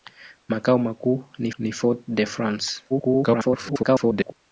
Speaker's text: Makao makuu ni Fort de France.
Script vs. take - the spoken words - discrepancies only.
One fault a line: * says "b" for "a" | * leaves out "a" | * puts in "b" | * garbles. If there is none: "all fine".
* puts in "ni"
* garbles